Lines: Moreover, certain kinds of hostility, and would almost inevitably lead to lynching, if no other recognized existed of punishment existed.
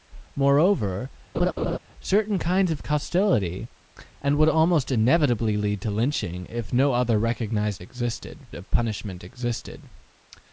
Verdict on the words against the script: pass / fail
pass